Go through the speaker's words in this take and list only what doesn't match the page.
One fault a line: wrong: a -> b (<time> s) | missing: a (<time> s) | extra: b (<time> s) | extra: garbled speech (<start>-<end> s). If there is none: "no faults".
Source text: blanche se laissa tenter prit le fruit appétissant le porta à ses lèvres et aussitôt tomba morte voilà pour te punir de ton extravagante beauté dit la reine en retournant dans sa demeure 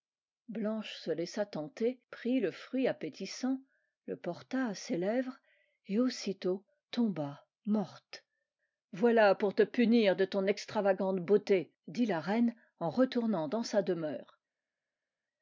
no faults